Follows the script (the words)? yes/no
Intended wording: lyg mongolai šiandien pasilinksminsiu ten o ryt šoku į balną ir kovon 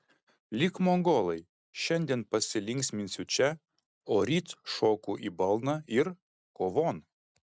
no